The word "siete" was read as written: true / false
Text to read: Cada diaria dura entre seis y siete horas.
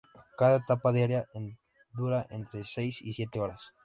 true